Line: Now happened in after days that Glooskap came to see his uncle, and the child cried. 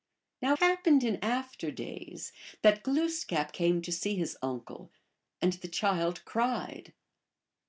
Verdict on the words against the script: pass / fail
pass